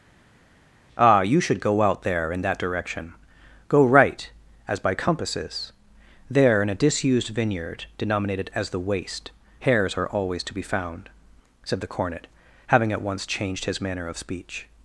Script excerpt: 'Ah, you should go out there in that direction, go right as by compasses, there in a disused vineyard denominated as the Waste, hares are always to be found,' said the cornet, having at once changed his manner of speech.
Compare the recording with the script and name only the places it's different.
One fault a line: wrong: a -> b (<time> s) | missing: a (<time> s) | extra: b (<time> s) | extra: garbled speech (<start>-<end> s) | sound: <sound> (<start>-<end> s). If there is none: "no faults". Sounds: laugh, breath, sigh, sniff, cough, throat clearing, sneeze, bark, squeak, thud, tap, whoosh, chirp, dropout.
no faults